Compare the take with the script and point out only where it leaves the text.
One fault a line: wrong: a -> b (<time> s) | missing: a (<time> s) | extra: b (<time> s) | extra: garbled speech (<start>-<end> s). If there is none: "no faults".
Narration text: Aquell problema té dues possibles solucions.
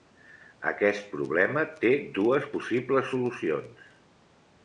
wrong: Aquell -> Aquest (0.7 s)